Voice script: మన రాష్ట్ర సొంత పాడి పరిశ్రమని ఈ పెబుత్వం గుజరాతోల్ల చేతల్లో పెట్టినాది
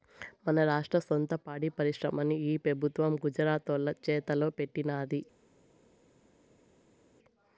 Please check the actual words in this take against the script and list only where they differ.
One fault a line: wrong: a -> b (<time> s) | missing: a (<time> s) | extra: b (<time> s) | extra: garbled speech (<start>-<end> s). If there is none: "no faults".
no faults